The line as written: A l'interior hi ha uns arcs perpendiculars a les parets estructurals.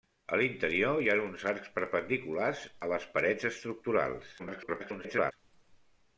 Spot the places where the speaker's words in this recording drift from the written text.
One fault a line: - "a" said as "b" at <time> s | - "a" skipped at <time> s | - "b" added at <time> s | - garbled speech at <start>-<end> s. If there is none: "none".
- garbled speech at 4.4-5.3 s